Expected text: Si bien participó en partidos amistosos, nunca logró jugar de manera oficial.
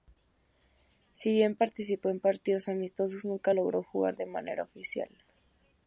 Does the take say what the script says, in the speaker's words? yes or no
yes